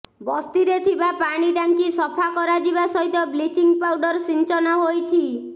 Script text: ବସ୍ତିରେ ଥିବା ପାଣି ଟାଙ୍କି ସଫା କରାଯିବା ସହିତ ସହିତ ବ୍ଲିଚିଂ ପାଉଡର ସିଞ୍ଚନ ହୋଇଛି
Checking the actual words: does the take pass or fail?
fail